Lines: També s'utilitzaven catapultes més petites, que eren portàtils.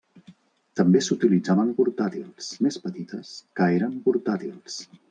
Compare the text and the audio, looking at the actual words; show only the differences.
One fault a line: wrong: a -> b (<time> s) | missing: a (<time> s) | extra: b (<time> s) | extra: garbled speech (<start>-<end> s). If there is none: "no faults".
wrong: catapultes -> portàtils (1.8 s)